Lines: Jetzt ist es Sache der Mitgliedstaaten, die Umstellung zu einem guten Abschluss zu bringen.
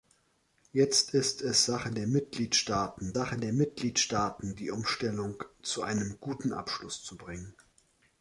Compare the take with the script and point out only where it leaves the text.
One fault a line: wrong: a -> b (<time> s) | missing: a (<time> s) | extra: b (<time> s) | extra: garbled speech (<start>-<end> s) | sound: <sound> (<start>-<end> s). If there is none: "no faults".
extra: Sache der Mitgliedstaaten (3.1 s)